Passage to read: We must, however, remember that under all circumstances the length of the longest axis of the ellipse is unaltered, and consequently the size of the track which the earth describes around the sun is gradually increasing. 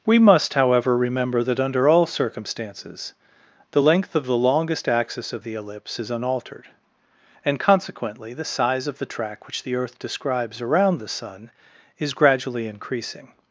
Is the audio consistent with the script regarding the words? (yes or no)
yes